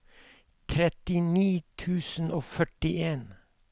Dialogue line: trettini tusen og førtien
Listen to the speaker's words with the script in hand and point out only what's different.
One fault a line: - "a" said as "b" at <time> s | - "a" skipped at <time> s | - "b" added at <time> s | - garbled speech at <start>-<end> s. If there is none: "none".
none